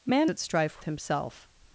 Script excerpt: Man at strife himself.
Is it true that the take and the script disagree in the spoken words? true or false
false